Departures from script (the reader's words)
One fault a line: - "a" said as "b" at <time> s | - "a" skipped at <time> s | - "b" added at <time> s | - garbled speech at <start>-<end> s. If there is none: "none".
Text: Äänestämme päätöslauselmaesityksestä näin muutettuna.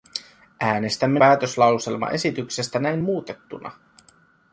none